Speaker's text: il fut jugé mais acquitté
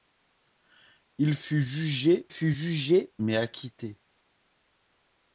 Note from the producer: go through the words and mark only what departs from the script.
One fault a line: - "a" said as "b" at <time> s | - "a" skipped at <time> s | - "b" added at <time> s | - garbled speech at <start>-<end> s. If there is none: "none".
- "fut jugé" added at 2.3 s